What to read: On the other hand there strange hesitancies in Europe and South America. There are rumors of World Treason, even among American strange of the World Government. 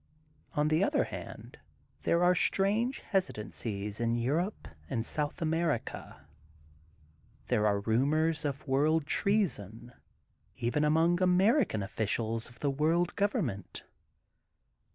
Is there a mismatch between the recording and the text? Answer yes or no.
yes